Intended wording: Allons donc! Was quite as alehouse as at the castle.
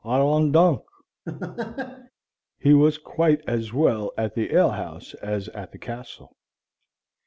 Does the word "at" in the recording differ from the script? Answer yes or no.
no